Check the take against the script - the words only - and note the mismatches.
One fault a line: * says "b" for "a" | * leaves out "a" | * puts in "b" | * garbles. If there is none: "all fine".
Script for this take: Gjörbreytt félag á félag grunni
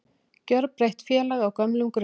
* says "gömlum" for "félag"